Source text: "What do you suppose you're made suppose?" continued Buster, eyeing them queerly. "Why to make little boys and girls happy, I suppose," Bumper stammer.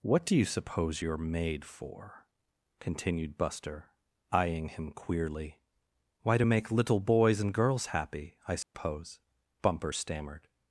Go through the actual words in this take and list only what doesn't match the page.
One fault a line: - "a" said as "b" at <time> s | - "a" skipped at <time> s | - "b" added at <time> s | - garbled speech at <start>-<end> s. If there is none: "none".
- "suppose" said as "for" at 1.7 s
- "them" said as "him" at 4.7 s
- "stammer" said as "stammered" at 9.9 s